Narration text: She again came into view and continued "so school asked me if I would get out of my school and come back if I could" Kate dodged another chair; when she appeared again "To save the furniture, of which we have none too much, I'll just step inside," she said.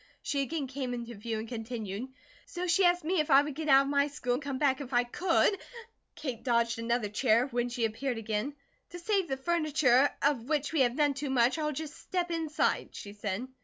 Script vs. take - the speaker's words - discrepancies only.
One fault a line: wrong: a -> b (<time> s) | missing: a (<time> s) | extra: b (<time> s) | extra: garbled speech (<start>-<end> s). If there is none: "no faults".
wrong: school -> she (2.6 s)